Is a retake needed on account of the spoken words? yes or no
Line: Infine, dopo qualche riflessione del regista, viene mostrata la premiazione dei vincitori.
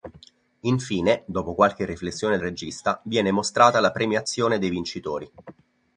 yes